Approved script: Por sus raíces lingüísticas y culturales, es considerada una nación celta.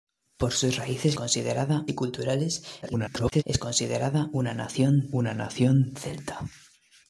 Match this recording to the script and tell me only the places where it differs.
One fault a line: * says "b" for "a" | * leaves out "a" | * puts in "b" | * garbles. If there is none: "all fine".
* says "considerada" for "lingüísticas"
* garbles
* puts in "una nación"